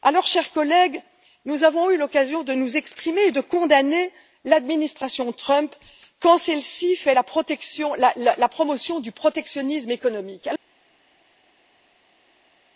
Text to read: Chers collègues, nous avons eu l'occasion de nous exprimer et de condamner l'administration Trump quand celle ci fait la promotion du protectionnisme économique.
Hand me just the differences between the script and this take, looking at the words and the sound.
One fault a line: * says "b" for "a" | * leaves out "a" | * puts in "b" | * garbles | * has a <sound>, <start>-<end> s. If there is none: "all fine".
all fine